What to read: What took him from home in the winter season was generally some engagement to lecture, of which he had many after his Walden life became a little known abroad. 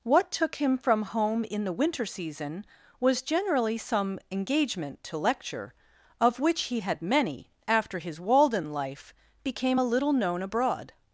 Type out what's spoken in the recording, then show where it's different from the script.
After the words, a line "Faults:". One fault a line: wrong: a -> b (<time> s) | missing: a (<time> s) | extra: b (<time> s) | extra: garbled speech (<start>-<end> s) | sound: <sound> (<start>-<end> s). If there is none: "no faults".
What took him from home in the winter season was generally some engagement to lecture, of which he had many after his Walden life became a little known abroad.
Faults:
no faults